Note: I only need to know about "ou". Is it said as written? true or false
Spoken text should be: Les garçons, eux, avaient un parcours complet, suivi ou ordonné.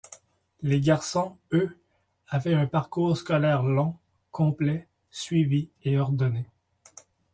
false